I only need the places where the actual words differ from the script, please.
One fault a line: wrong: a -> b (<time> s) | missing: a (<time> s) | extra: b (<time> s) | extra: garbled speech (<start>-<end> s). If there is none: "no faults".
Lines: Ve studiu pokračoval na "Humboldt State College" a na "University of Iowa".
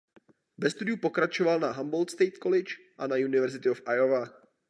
no faults